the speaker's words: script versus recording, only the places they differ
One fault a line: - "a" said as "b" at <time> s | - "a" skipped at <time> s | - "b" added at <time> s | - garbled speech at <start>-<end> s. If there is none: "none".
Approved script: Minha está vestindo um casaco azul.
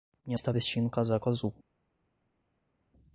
none